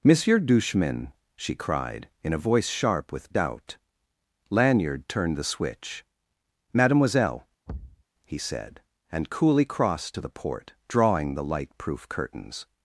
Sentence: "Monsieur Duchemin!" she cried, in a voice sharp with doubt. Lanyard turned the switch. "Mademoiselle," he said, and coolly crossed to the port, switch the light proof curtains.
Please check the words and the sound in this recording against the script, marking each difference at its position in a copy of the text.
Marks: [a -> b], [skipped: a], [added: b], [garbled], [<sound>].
"Monsieur Duchemin!" she cried, in a voice sharp with doubt. Lanyard turned the switch. "Mademoiselle," [thud] he said, and coolly crossed to the port, [switch -> drawing] the light proof curtains.